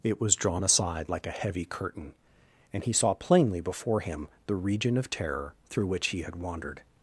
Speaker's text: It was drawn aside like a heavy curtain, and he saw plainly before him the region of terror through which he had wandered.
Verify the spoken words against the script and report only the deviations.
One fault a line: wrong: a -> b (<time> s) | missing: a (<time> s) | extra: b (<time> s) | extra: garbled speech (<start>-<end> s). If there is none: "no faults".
no faults